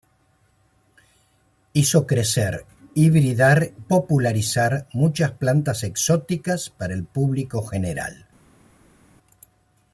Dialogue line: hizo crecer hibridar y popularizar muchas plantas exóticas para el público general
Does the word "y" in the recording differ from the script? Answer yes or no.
yes